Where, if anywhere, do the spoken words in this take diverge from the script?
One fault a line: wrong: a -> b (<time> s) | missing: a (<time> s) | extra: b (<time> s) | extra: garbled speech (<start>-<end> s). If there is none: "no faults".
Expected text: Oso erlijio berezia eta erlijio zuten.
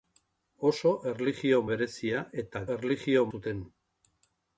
no faults